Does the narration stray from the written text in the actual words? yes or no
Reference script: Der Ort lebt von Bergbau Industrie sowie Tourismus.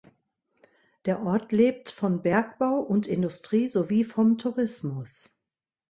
yes